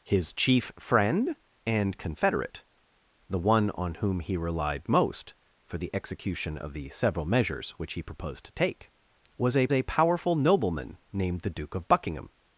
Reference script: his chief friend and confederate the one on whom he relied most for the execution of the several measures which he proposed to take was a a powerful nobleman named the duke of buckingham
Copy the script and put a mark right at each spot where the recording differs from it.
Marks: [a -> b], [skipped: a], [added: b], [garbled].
his chief friend and confederate the one on whom he relied most for the execution of the several measures which he proposed to take was a a powerful nobleman named the duke of buckingham